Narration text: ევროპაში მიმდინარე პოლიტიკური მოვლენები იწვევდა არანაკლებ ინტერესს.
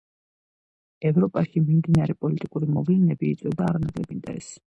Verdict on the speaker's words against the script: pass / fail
pass